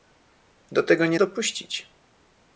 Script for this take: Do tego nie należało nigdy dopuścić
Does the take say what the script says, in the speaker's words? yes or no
no